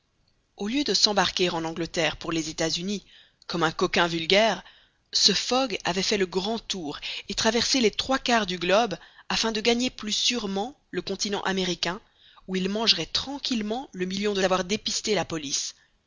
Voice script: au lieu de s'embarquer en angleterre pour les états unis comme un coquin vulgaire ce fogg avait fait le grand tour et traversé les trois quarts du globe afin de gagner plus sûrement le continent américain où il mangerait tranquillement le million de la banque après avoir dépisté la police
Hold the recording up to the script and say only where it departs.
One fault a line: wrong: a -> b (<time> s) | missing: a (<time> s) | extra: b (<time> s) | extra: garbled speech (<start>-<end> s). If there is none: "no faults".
missing: la banque après (14.4 s)